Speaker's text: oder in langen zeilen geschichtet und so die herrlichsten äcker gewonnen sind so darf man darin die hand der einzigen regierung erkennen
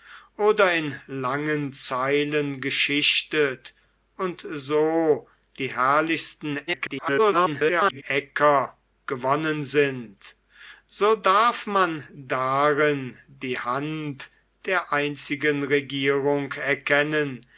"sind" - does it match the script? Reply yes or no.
yes